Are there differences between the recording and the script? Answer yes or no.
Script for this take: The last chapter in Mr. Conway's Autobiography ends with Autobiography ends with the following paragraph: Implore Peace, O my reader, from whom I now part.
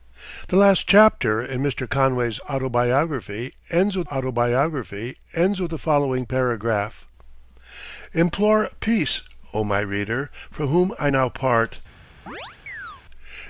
no